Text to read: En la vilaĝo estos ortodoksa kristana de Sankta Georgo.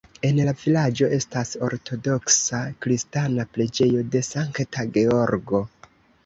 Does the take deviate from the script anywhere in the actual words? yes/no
yes